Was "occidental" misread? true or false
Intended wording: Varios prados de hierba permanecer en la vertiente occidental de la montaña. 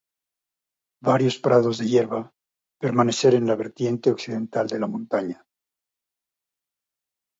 false